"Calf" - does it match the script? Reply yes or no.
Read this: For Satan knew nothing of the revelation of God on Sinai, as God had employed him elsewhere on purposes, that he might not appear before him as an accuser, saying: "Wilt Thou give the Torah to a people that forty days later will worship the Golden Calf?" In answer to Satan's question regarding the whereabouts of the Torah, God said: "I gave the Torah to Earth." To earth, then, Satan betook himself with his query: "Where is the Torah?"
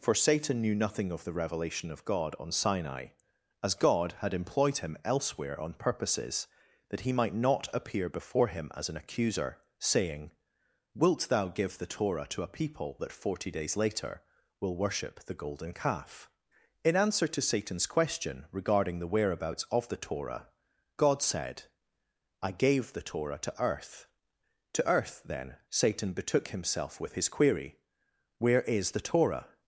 yes